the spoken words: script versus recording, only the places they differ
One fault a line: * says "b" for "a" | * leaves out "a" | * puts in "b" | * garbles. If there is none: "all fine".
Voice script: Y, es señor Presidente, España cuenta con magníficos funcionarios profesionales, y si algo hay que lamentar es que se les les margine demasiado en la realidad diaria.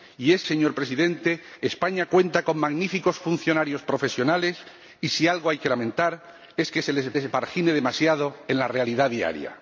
all fine